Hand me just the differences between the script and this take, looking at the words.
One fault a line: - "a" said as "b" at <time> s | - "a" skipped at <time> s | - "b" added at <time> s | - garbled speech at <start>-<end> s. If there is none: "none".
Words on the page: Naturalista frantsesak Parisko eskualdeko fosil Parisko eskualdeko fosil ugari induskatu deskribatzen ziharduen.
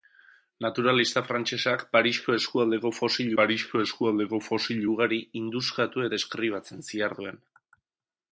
none